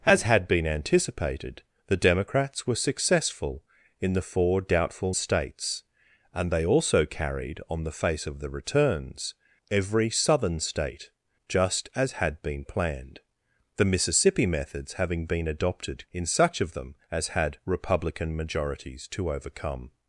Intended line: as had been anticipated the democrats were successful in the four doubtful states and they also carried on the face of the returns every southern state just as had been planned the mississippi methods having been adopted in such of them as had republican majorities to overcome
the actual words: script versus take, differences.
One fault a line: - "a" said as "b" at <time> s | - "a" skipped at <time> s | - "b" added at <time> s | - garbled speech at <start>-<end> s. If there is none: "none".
none